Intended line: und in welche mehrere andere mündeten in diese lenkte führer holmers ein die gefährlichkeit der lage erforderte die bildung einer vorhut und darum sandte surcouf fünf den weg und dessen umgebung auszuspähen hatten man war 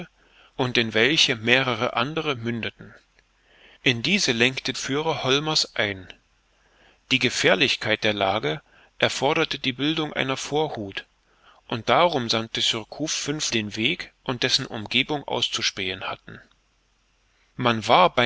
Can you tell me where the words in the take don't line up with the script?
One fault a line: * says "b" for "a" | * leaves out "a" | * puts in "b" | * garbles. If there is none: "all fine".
all fine